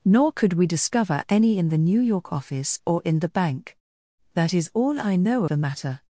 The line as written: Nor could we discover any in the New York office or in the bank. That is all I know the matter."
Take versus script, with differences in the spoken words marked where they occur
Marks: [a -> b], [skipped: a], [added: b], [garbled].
Nor could we discover any in the New York office or in the bank. That is all I know the matter."